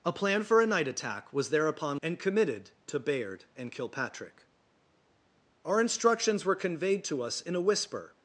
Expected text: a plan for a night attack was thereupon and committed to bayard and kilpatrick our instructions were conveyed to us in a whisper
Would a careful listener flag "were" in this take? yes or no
no